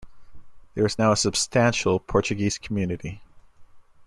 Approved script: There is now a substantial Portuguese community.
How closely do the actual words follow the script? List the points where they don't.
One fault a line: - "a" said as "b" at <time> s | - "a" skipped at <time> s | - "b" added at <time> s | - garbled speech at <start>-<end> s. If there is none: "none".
none